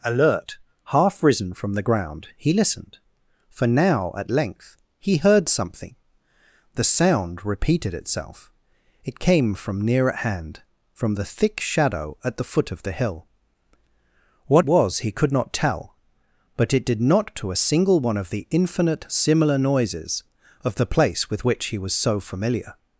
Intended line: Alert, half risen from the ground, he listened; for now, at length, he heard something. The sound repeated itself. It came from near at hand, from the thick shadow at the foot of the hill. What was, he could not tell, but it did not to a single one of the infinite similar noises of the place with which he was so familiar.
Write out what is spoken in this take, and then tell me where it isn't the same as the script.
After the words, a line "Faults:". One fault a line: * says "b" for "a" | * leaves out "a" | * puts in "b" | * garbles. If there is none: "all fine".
Alert, half risen from the ground, he listened; for now, at length, he heard something. The sound repeated itself. It came from near at hand, from the thick shadow at the foot of the hill. What was, he could not tell, but it did not to a single one of the infinite similar noises of the place with which he was so familiar.
Faults:
all fine